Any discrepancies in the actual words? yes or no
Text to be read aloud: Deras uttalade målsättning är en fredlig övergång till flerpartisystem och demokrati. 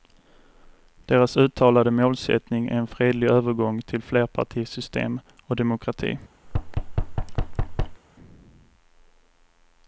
no